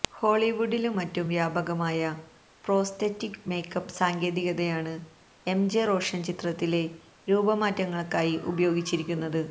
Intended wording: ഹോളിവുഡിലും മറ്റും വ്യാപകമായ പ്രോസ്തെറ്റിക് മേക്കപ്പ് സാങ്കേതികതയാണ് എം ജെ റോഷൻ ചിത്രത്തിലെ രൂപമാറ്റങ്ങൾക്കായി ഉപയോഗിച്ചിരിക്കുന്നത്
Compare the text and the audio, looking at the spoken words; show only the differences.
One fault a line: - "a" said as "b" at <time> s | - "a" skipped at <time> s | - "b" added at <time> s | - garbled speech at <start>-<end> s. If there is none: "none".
none